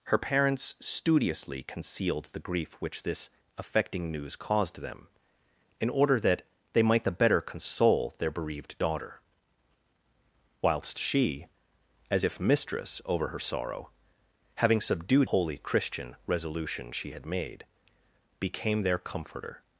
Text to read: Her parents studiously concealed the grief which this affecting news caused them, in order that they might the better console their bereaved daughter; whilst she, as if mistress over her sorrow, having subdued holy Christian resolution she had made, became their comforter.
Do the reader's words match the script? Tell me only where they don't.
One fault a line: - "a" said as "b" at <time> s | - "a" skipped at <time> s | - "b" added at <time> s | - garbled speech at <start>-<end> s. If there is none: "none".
none